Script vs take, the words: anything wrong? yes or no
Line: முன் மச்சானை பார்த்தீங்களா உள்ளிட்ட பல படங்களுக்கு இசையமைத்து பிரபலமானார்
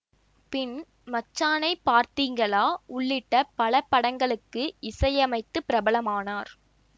yes